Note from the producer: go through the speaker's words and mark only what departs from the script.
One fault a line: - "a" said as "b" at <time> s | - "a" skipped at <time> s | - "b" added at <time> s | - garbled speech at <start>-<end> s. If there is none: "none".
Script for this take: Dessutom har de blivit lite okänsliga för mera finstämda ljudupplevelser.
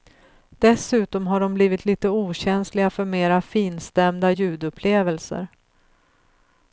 none